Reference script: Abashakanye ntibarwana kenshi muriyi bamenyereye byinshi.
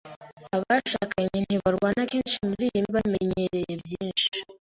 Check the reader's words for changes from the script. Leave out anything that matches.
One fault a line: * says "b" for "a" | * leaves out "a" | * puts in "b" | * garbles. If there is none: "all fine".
all fine